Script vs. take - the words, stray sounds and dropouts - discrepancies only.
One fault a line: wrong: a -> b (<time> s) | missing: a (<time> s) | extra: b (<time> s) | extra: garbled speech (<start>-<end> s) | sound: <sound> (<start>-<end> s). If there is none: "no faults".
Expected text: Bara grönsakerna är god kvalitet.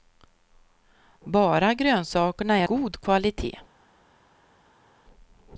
no faults